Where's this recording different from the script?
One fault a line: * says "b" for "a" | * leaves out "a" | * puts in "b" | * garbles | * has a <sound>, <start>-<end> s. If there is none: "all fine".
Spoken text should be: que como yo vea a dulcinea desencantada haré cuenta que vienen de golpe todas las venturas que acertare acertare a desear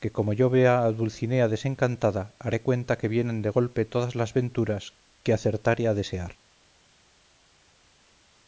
* leaves out "acertare"